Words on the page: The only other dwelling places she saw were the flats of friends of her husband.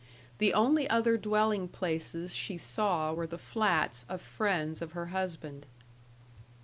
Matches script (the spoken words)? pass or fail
pass